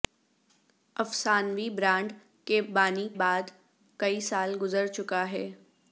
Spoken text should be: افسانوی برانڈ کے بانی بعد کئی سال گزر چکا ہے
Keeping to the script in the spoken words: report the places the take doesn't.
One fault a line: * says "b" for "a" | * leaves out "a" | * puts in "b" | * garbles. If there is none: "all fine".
all fine